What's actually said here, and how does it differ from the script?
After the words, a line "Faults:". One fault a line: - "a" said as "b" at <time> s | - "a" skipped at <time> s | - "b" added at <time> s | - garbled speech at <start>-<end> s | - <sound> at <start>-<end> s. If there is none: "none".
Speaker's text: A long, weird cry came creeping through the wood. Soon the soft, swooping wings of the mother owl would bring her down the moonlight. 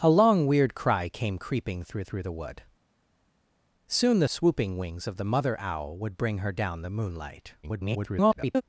A long, weird cry came creeping through through the wood. Soon the swooping wings of the mother owl would bring her down the moonlight. [garbled]
Faults:
- "through" added at 2.0 s
- "soft" skipped at 4.3 s
- garbled speech at 7.6-8.6 s